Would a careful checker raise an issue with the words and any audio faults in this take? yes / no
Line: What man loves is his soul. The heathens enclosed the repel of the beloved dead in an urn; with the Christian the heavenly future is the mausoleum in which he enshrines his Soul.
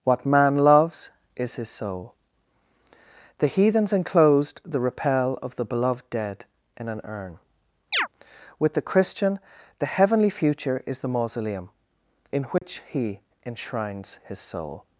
yes